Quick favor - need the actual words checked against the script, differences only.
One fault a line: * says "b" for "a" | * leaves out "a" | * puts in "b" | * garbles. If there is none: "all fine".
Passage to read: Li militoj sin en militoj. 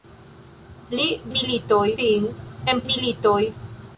all fine